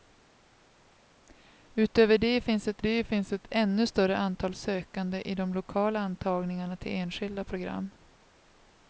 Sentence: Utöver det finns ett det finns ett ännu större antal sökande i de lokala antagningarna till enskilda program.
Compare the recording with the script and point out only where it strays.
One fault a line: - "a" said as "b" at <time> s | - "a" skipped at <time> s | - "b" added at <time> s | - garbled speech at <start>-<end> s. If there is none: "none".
none